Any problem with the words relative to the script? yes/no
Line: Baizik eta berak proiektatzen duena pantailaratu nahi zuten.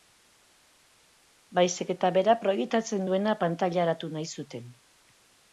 no